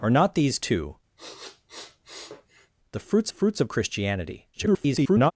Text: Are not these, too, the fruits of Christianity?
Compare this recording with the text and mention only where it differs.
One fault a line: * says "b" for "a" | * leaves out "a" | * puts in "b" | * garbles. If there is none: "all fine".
* puts in "fruits"
* garbles